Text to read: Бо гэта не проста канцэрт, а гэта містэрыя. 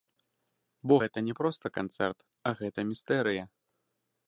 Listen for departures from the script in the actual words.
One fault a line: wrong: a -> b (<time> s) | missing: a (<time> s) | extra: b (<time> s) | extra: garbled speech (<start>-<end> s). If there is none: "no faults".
no faults